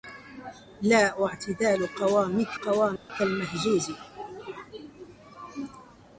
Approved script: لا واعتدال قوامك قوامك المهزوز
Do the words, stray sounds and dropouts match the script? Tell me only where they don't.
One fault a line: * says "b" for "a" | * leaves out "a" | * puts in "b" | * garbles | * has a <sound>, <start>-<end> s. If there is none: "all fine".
* has a dropout, 3.0-3.1 s